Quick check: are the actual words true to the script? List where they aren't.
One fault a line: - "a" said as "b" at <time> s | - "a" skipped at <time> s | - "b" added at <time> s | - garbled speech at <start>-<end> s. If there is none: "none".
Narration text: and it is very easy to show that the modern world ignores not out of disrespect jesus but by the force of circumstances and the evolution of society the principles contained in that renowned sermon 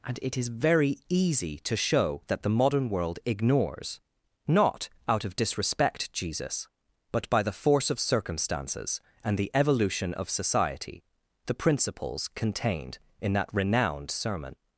none